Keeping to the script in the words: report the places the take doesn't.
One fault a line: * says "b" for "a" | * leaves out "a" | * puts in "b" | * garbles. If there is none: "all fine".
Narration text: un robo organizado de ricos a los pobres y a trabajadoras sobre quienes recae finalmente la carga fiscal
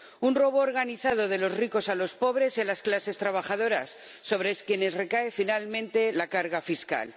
* puts in "los"
* puts in "las clases"